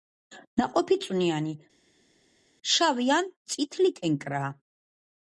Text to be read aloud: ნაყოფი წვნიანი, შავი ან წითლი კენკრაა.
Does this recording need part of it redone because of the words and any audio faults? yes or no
no